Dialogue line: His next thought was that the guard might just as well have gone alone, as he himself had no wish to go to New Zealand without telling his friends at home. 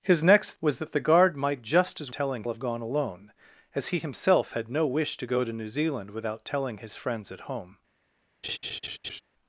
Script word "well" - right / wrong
wrong